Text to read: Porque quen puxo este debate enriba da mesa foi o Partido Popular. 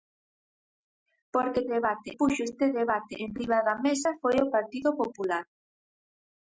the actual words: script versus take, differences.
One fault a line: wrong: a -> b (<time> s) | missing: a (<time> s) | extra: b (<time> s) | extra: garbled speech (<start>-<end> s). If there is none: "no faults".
wrong: quen -> debate (1.7 s)